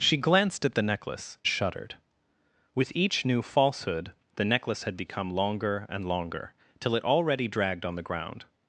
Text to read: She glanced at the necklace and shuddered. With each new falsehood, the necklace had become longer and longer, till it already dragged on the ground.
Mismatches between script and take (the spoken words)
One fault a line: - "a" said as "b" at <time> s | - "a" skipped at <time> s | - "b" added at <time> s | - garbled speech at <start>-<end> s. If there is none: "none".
- "and" skipped at 1.4 s